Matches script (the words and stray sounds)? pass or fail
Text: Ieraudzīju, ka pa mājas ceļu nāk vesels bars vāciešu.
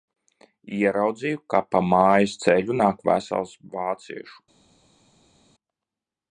fail